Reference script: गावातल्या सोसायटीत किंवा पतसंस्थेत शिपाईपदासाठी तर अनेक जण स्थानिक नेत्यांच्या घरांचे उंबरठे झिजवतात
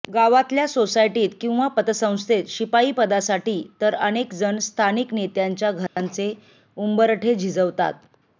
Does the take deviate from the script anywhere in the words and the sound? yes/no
yes